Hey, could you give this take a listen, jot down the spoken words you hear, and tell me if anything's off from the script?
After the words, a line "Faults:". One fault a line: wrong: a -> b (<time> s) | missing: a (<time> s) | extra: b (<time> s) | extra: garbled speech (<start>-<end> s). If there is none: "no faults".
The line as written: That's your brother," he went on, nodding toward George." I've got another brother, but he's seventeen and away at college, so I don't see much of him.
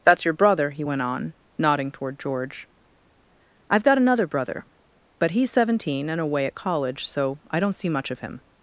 That's your brother," he went on, nodding toward George." I've got another brother, but he's seventeen and away at college, so I don't see much of him.
Faults:
no faults